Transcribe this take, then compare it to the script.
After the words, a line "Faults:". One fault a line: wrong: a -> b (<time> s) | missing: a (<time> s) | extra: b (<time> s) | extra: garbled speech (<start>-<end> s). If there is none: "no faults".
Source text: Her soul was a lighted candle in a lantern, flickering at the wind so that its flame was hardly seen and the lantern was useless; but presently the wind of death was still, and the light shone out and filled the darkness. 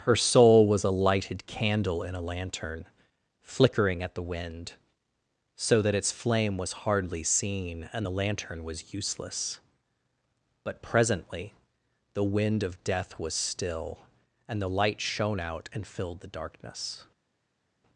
Her soul was a lighted candle in a lantern, flickering at the wind so that its flame was hardly seen and the lantern was useless; but presently the wind of death was still, and the light shone out and filled the darkness.
Faults:
no faults